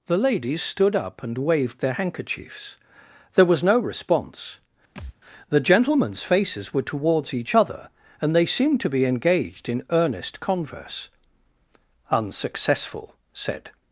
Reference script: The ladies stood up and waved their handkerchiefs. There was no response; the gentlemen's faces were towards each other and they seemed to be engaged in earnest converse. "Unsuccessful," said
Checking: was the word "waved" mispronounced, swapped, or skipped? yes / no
no